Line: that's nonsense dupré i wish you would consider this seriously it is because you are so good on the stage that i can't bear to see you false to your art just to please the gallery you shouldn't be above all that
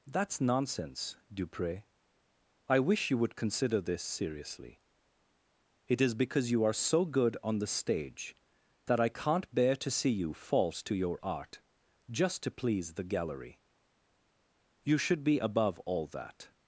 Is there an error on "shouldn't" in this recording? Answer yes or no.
yes